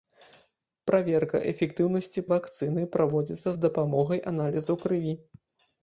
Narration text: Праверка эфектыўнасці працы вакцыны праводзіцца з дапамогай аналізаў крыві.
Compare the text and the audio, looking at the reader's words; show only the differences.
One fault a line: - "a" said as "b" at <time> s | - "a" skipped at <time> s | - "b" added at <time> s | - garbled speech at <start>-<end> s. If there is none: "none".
- "працы" skipped at 2.2 s